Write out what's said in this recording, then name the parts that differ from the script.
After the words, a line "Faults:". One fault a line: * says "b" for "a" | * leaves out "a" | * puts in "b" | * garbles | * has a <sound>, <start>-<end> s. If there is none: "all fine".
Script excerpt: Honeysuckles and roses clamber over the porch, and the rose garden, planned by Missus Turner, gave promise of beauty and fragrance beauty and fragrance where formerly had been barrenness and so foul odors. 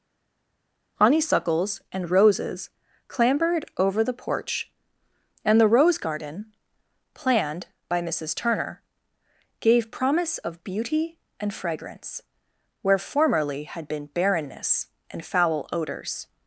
Honeysuckles and roses clambered over the porch, and the rose garden, planned by Missus Turner, gave promise of beauty and fragrance where formerly had been barrenness and foul odors.
Faults:
* says "clambered" for "clamber"
* leaves out "beauty and fragrance"
* leaves out "so"